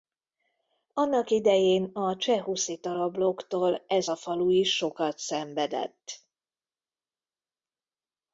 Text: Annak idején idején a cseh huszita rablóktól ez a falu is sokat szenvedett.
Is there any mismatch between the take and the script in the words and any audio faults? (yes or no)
yes